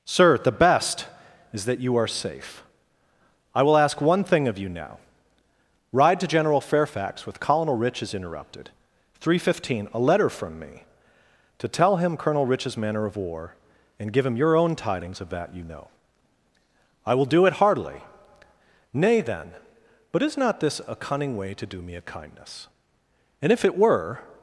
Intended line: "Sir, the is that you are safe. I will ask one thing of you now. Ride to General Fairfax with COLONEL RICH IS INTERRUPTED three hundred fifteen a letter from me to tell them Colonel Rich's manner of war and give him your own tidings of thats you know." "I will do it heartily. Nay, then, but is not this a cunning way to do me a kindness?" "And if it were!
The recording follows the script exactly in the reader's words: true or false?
false